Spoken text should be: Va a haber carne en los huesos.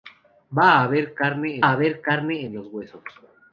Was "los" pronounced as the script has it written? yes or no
yes